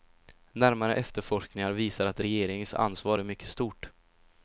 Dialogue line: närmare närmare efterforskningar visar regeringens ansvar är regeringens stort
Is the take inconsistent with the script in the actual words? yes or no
yes